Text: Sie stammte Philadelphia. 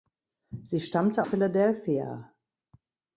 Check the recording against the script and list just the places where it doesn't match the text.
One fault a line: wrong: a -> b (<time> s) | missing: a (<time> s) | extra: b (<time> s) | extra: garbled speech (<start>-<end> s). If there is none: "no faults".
no faults